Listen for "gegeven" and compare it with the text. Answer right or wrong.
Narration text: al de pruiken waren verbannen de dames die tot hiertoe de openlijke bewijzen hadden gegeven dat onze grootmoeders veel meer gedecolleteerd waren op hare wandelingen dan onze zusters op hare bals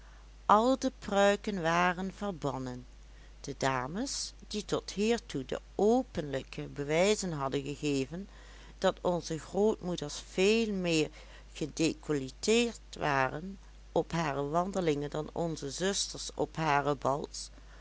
right